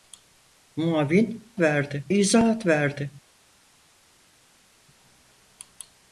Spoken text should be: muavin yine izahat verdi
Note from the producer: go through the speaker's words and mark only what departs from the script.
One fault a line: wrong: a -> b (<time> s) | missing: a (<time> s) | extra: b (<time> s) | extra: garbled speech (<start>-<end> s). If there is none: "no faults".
wrong: yine -> verdi (1.6 s)